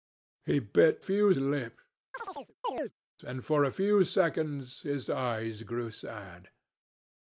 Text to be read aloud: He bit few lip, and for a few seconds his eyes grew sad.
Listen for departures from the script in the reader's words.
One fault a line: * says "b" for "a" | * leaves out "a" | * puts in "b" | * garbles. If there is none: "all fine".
all fine